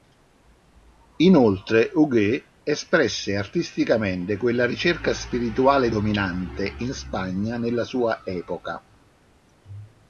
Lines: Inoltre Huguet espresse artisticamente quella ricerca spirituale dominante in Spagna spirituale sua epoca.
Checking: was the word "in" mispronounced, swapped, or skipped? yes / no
no